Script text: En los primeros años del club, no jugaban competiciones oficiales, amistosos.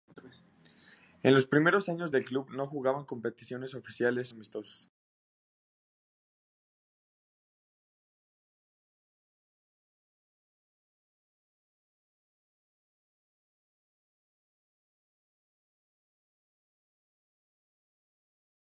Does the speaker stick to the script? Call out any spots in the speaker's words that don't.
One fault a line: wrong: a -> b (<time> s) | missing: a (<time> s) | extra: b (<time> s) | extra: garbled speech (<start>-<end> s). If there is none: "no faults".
no faults